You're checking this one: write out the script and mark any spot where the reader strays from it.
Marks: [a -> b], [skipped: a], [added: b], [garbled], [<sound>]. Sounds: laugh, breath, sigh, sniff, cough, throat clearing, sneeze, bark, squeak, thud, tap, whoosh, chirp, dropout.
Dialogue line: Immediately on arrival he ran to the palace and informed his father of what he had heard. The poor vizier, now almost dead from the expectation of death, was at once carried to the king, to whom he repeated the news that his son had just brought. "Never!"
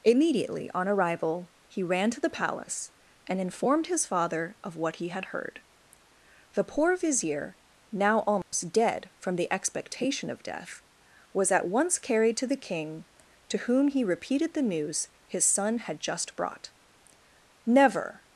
Immediately on arrival he ran to the palace and informed his father of what he had heard. The poor vizier, now almost [dropout] dead from the expectation of death, was at once carried to the king, to whom he repeated the news [skipped: that] his son had just brought. "Never!"